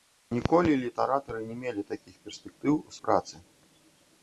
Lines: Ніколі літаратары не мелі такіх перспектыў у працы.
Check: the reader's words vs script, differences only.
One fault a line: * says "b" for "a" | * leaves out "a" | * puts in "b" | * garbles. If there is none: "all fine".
all fine